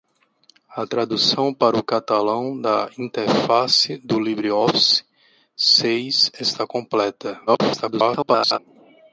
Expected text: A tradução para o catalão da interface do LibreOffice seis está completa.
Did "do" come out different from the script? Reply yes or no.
no